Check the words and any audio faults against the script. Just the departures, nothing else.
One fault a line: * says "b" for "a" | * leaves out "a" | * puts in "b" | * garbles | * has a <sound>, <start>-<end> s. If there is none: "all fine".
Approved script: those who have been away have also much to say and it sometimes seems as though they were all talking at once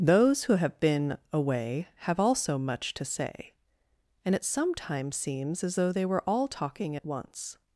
all fine